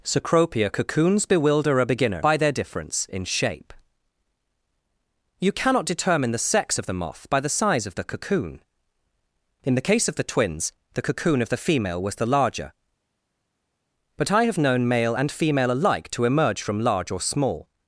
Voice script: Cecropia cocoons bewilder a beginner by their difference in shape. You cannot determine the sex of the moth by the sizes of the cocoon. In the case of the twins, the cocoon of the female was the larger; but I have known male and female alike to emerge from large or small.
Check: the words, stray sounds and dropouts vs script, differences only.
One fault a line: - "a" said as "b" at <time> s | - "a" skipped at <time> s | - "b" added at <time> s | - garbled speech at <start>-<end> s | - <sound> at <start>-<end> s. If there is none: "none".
- "sizes" said as "size" at 7.5 s